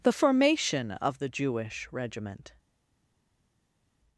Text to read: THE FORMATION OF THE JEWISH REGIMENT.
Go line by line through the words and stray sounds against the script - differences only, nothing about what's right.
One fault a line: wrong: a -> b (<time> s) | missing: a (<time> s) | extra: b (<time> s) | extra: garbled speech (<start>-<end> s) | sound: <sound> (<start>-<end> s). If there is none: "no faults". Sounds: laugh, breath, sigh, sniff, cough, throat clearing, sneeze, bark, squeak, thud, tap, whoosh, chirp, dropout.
no faults